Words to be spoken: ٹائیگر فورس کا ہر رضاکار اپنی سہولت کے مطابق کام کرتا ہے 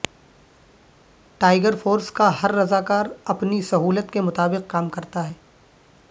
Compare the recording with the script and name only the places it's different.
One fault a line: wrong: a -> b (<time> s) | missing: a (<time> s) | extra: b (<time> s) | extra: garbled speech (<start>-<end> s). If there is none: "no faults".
no faults